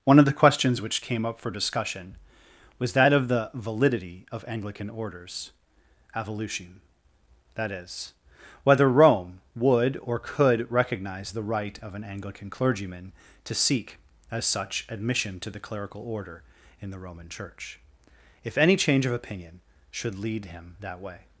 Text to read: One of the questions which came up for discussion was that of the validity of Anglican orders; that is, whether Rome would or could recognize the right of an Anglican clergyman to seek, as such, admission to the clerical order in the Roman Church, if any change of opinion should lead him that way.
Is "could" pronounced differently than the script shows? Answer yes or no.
no